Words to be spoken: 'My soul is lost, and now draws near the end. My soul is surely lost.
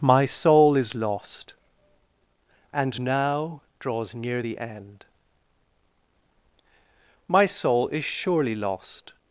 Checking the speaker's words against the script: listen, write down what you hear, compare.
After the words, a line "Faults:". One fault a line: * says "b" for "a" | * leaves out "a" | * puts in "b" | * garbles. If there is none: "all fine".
'My soul is lost, and now draws near the end. My soul is surely lost.
Faults:
all fine